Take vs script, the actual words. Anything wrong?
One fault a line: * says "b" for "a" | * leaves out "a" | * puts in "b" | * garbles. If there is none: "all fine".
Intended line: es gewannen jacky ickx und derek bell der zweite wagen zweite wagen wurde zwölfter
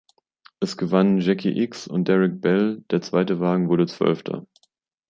* leaves out "zweite wagen"